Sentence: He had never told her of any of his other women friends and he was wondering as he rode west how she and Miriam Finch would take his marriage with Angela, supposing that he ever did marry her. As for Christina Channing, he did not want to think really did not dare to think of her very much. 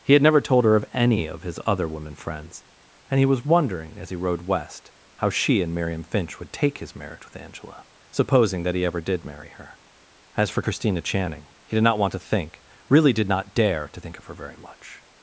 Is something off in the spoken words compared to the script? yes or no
no